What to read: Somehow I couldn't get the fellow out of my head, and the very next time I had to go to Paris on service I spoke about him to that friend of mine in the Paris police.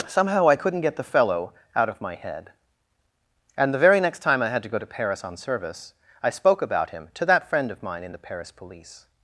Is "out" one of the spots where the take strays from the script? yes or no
no